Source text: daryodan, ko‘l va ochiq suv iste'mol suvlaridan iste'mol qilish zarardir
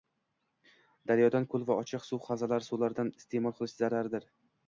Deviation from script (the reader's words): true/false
true